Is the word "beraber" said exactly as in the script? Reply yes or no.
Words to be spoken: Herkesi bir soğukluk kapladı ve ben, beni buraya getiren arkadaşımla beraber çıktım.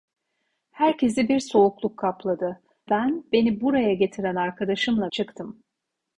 no